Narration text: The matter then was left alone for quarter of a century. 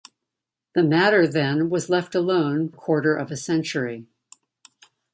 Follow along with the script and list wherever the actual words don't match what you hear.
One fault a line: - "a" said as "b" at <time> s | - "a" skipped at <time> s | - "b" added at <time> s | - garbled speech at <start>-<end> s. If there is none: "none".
- "for" skipped at 2.7 s